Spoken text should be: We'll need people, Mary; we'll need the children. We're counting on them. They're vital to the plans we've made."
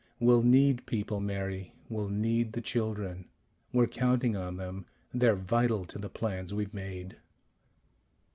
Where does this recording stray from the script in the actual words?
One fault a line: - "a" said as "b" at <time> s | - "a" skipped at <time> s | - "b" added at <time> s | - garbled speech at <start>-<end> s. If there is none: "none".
none